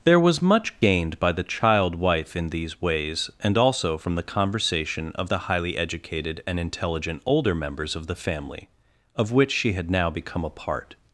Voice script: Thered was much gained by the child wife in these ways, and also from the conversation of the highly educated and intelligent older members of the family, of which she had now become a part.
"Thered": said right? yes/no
no